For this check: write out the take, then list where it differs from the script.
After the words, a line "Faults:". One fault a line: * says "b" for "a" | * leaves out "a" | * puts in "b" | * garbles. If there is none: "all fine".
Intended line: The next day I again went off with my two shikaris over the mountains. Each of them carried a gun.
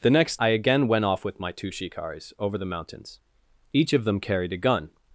The next I again went off with my two shikaris over the mountains. Each of them carried a gun.
Faults:
* leaves out "day"